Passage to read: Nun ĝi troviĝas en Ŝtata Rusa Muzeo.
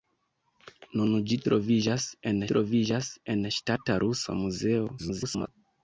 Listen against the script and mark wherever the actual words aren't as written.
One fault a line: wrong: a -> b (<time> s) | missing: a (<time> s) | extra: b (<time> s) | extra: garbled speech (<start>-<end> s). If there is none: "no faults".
extra: troviĝas en (2.5 s)
extra: garbled speech (5.0-5.5 s)